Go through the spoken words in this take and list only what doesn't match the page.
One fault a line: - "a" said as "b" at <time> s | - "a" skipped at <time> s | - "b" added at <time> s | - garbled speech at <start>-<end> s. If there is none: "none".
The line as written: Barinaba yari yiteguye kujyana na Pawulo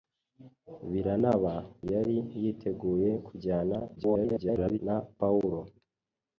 - garbled speech at 4.0-4.8 s